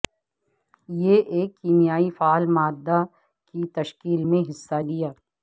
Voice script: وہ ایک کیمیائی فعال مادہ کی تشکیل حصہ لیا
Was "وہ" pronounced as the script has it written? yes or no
no